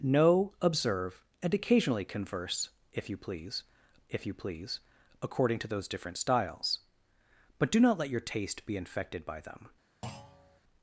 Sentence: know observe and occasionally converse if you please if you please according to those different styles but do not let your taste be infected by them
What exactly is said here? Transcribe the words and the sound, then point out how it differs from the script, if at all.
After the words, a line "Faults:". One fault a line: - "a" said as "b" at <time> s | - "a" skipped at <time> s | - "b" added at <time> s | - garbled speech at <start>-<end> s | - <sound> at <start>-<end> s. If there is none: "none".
know observe and occasionally converse if you please if you please according to those different styles but do not let your taste be infected by them
Faults:
- thud at 10.0-10.6 s